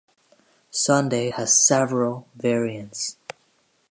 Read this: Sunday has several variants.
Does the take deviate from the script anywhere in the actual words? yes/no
no